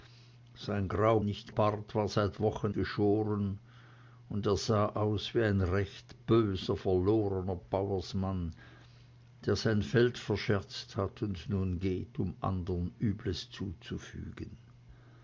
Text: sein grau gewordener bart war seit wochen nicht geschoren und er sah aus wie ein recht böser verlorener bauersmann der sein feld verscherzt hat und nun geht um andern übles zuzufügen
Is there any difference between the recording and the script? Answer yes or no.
yes